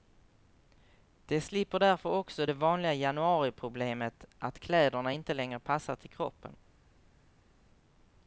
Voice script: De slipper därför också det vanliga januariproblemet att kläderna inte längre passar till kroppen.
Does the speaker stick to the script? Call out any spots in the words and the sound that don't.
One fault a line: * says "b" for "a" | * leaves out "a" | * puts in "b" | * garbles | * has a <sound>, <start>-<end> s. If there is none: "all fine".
all fine